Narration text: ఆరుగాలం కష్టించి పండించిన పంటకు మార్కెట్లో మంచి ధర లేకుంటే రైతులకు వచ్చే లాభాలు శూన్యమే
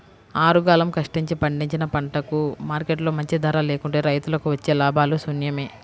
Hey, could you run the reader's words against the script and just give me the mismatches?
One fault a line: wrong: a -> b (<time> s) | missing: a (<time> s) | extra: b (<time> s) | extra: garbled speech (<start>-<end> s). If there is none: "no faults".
no faults